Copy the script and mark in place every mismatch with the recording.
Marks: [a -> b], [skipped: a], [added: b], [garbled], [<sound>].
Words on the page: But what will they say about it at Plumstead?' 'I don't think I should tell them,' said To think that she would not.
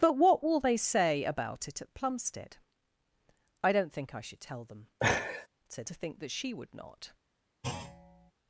But what will they say about it at Plumstead?' 'I don't think I should tell them,' [laugh] said To think that she would not. [thud]